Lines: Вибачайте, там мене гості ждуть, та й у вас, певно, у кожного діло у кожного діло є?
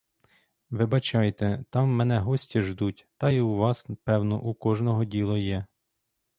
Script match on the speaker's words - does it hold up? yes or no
no